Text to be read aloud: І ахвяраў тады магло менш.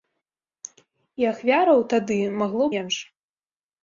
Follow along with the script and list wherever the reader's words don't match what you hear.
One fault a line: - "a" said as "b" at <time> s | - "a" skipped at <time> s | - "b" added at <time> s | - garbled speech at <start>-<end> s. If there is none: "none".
none